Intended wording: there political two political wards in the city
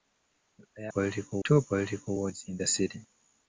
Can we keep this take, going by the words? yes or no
yes